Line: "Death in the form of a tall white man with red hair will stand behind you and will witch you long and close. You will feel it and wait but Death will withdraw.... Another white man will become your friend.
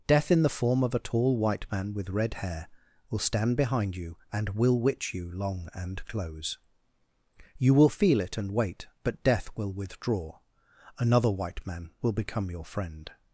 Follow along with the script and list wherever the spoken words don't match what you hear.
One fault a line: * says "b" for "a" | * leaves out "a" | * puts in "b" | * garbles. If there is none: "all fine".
all fine